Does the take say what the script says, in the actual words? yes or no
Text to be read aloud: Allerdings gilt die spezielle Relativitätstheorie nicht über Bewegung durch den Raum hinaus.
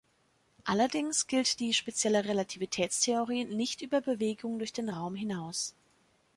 yes